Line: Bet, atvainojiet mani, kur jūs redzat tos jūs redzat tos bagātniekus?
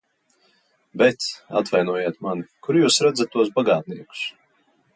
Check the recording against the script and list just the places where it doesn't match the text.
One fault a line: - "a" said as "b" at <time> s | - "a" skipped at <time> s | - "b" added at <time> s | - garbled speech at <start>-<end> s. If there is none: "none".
- "jūs redzat tos" skipped at 3.5 s